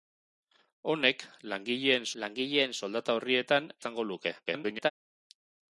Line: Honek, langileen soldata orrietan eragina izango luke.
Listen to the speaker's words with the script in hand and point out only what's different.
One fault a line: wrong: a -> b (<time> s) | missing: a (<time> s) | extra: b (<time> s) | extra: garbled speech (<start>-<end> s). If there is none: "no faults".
extra: langileen (2.2 s)
missing: eragina (3.7 s)
extra: garbled speech (4.5-4.9 s)